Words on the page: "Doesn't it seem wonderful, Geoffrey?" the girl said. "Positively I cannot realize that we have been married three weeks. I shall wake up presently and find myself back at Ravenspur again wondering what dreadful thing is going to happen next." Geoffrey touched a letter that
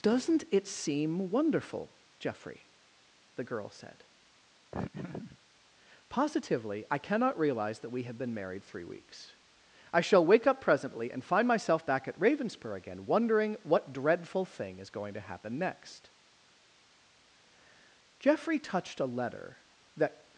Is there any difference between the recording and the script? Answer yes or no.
no